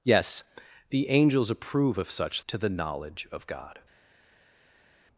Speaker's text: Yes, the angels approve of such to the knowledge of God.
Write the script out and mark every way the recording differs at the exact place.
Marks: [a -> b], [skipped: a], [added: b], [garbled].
Yes, the angels approve of such to the knowledge of God.